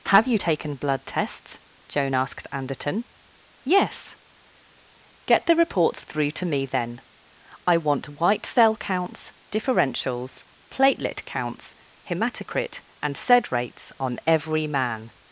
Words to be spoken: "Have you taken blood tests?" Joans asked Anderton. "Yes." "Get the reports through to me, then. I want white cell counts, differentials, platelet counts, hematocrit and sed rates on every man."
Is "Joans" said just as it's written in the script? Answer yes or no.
no